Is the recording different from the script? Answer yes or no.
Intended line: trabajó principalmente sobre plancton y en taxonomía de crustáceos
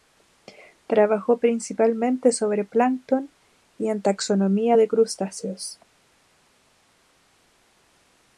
no